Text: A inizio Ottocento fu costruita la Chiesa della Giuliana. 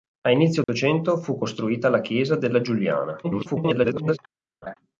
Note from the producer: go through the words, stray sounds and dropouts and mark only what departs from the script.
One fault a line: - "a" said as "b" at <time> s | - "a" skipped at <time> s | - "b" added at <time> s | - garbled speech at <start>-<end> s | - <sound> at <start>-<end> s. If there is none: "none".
- dropout at 0.6-0.7 s
- garbled speech at 3.2-4.2 s
- laugh at 4.6-4.7 s